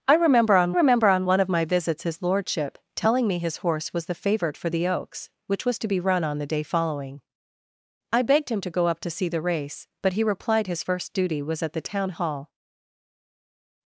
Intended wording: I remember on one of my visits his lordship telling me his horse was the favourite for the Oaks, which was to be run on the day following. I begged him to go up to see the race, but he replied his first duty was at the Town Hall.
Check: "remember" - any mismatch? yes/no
no